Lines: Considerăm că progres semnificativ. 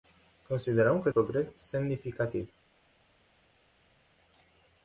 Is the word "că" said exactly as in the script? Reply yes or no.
yes